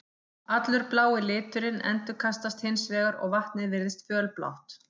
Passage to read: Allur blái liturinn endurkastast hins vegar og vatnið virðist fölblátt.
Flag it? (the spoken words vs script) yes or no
no